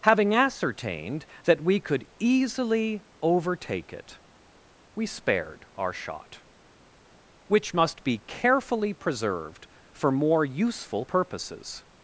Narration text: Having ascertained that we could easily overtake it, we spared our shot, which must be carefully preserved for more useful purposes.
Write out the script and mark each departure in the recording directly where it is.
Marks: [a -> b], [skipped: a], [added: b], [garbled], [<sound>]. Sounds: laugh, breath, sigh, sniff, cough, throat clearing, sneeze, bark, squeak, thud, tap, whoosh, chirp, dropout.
Having ascertained that we could easily overtake it, we spared our shot, which must be carefully preserved for more useful purposes.